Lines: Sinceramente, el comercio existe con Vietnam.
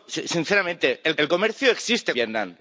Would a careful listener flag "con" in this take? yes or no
yes